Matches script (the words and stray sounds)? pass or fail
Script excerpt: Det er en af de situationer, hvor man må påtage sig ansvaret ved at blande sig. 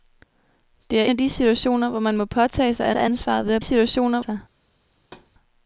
fail